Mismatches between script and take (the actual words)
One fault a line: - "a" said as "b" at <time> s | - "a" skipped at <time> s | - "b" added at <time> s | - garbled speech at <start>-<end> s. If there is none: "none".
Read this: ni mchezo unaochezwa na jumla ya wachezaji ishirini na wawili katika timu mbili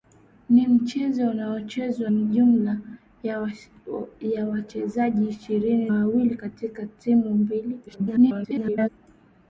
- "na" skipped at 2.1 s
- "na" skipped at 5.9 s
- garbled speech at 7.9-8.9 s